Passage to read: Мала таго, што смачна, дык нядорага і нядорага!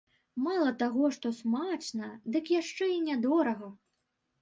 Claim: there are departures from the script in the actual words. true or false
true